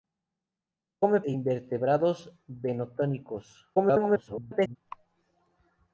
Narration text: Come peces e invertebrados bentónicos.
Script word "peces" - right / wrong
wrong